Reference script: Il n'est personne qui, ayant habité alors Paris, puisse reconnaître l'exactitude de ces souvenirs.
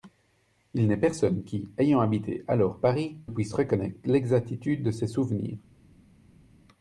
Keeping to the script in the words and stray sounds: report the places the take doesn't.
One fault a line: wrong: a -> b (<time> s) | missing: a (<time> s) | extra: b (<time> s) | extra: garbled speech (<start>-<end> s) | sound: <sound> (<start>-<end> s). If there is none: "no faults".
no faults